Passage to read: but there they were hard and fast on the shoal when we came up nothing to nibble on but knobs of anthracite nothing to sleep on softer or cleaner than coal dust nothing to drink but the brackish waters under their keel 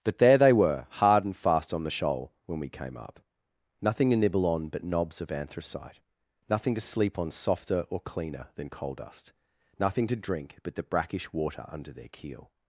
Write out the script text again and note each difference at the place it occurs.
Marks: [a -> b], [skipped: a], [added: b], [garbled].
but there they were hard and fast on the shoal when we came up nothing to nibble on but knobs of anthracite nothing to sleep on softer or cleaner than coal dust nothing to drink but the brackish [waters -> water] under their keel